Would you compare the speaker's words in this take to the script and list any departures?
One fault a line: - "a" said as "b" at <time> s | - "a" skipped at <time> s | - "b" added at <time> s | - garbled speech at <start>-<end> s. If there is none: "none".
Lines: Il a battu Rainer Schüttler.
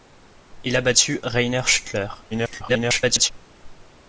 - garbled speech at 2.3-3.3 s